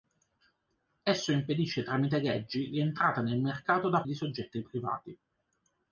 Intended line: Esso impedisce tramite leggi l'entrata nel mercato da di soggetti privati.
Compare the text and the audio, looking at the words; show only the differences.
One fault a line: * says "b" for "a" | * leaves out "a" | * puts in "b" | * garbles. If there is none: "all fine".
all fine